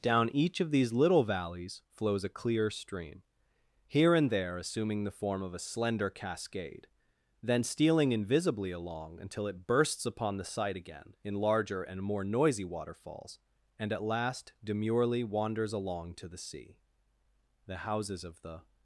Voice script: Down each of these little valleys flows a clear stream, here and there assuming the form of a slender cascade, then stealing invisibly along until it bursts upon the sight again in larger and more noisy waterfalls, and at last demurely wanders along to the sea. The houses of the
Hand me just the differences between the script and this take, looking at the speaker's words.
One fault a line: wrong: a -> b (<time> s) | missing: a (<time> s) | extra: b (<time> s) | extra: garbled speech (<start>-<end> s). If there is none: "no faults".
no faults